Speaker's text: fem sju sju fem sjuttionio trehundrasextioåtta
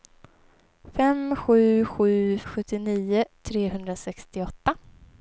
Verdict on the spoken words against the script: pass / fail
fail